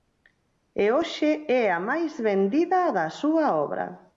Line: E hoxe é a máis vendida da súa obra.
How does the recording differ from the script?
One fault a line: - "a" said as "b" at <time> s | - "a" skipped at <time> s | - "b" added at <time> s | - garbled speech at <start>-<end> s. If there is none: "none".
none